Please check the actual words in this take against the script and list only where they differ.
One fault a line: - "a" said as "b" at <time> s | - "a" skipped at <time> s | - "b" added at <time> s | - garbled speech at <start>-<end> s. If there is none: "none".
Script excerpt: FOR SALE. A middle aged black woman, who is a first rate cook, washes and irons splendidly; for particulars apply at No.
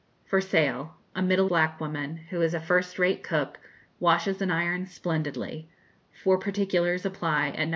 - "aged" skipped at 1.5 s